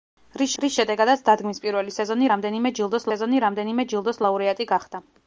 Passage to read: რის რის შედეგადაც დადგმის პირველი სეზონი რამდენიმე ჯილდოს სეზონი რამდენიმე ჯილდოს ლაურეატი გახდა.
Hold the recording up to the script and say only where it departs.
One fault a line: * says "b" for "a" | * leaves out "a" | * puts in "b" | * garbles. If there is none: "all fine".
all fine